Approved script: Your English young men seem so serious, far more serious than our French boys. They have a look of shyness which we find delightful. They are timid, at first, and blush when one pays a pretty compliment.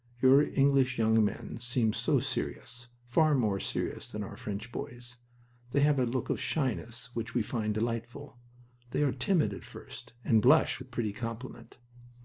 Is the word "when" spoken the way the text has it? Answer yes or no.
no